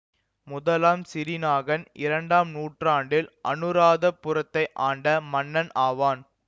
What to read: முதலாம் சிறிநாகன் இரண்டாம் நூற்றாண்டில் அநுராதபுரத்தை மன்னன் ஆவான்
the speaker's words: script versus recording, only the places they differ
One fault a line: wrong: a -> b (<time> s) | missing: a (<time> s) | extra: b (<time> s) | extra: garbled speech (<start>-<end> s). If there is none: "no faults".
extra: ஆண்ட (4.9 s)